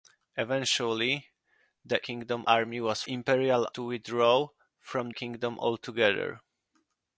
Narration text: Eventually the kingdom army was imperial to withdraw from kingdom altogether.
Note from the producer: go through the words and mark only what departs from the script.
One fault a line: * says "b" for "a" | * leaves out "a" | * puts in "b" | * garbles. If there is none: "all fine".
all fine